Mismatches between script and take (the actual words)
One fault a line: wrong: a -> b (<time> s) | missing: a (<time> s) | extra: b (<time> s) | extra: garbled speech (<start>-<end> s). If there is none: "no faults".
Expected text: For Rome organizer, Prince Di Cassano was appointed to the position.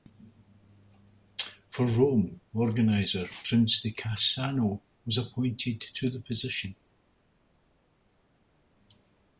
no faults